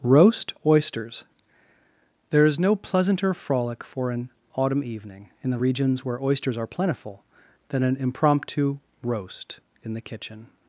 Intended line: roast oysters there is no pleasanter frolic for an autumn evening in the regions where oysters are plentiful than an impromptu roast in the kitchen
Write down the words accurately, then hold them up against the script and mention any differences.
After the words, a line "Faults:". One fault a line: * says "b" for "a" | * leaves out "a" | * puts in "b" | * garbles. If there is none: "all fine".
roast oysters there is no pleasanter frolic for an autumn evening in the regions where oysters are plentiful than an impromptu roast in the kitchen
Faults:
all fine